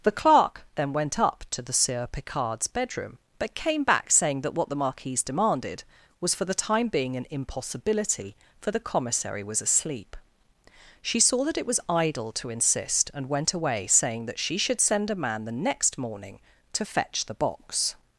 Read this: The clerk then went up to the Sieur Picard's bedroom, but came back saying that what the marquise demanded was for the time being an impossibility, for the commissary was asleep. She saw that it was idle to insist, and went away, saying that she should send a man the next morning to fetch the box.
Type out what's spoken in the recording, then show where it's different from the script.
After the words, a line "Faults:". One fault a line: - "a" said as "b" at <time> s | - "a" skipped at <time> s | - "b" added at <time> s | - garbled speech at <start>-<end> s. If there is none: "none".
The clerk then went up to the Sieur Picard's bedroom, but came back saying that what the marquise demanded was for the time being an impossibility, for the commissary was asleep. She saw that it was idle to insist, and went away, saying that she should send a man the next morning to fetch the box.
Faults:
none